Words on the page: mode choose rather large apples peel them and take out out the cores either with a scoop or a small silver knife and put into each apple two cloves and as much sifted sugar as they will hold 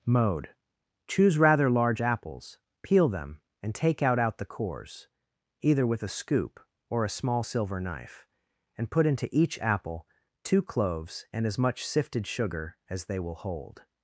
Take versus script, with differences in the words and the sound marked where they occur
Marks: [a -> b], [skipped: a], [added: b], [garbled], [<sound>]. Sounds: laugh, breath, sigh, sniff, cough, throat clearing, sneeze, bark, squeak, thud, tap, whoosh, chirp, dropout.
mode choose rather large apples peel them and take out out the cores either with a scoop or a small silver knife and put into each apple two cloves and as much sifted sugar as they will hold